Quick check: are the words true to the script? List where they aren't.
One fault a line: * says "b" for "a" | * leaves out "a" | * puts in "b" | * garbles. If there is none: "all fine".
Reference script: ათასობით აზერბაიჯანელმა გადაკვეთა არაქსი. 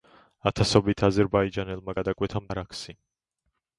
all fine